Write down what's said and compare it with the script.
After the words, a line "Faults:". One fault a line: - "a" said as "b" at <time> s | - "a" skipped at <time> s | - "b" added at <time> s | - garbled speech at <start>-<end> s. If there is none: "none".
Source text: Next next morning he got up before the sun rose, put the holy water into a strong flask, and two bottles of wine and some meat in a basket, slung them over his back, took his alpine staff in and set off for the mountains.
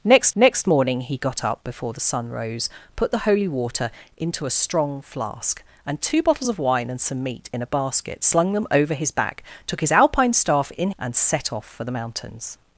Next next morning he got up before the sun rose, put the holy water into a strong flask, and two bottles of wine and some meat in a basket, slung them over his back, took his alpine staff in and set off for the mountains.
Faults:
none